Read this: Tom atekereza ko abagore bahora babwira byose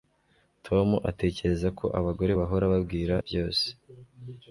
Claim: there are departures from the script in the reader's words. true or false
false